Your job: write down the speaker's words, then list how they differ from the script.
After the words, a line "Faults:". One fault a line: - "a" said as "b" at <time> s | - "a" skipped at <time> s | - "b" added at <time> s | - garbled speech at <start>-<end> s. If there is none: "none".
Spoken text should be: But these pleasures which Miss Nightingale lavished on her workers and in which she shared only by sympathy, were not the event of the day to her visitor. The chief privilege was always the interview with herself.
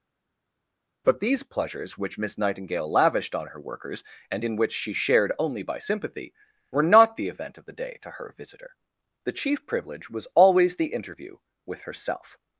But these pleasures which Miss Nightingale lavished on her workers and in which she shared only by sympathy, were not the event of the day to her visitor. The chief privilege was always the interview with herself.
Faults:
none